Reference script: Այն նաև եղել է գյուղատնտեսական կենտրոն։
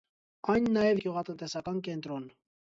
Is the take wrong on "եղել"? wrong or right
wrong